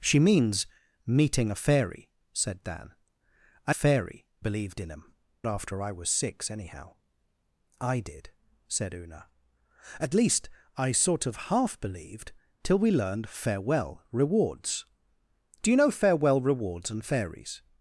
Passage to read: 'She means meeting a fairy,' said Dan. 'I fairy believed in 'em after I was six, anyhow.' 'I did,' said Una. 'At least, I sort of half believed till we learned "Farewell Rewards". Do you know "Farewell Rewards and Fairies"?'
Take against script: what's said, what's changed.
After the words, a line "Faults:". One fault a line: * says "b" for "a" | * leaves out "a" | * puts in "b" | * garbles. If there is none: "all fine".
'She means meeting a fairy,' said Dan. 'I fairy believed in 'em after I was six, anyhow.' 'I did,' said Una. 'At least, I sort of half believed till we learned "Farewell Rewards". Do you know "Farewell Rewards and Fairies"?'
Faults:
all fine